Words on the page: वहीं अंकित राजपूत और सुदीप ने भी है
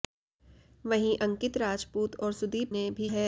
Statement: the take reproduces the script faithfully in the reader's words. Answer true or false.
true